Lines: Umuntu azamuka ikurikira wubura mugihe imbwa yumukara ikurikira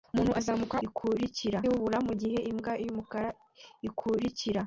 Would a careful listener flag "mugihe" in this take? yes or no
no